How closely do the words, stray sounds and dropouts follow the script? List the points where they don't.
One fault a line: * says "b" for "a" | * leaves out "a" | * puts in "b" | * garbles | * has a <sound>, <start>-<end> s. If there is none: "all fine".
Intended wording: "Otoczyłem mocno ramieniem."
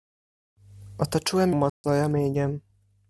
* has a dropout, 1.7-1.8 s